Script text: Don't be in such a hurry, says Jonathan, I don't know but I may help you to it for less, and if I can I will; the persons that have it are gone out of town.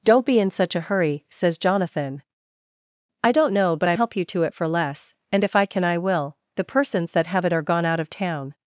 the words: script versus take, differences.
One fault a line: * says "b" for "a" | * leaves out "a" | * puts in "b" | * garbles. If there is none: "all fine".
* leaves out "may"